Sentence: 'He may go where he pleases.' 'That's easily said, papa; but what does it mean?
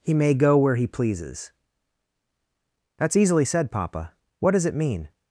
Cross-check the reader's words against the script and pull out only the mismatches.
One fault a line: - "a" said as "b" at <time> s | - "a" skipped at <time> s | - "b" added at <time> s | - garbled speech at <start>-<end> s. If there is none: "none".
- "but" skipped at 4.1 s